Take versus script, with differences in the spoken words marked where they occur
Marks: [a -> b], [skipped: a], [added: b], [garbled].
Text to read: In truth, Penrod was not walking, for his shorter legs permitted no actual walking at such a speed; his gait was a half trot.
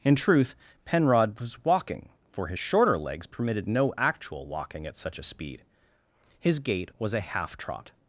In truth, Penrod was [skipped: not] walking, for his shorter legs permitted no actual walking at such a speed; his gait was a half trot.